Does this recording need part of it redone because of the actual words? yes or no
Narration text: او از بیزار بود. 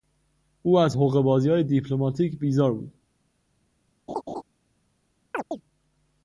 yes